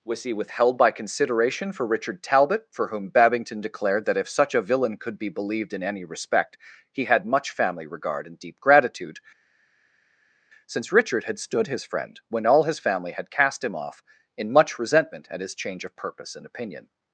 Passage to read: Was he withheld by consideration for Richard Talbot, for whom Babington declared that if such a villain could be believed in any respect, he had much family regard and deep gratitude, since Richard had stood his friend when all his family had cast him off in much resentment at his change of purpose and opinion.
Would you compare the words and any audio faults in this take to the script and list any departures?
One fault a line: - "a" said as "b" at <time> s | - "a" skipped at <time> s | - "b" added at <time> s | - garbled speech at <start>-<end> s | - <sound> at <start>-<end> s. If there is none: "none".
none